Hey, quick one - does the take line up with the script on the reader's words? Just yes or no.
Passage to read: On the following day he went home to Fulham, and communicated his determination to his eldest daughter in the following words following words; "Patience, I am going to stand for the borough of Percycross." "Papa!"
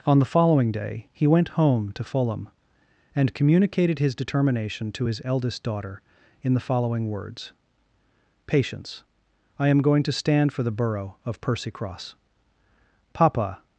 no